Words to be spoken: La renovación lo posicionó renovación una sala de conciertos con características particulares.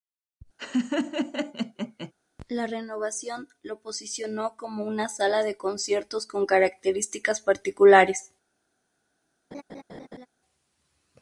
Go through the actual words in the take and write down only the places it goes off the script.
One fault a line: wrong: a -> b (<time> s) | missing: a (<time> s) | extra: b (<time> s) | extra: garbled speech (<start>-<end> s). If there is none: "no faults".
wrong: renovación -> como (4.6 s)